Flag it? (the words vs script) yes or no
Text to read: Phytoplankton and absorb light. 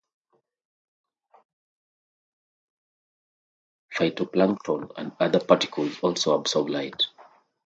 yes